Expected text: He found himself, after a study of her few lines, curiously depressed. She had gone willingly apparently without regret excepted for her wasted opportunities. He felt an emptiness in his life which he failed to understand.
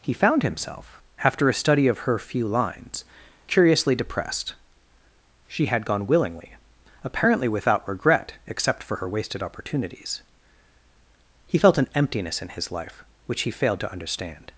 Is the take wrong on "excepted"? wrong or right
wrong